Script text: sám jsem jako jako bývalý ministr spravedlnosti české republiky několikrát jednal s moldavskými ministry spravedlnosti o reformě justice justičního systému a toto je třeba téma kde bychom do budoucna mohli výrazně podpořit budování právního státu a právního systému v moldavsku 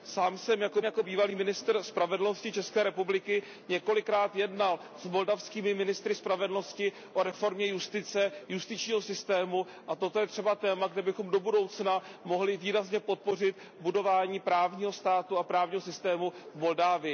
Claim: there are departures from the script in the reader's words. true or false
false